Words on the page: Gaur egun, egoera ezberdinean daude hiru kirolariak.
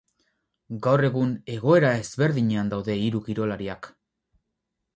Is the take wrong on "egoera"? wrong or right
right